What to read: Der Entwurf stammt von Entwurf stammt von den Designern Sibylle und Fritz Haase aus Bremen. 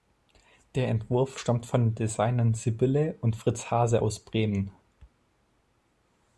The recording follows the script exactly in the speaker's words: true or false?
false